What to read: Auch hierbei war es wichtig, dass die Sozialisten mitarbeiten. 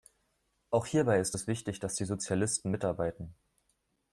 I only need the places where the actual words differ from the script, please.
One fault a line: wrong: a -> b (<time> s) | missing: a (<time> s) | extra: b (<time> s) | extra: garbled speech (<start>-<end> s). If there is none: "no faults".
wrong: war -> ist (1.2 s)